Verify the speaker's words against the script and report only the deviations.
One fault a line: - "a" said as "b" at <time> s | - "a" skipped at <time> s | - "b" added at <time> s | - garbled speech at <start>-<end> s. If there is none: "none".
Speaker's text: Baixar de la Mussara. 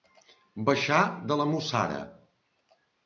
none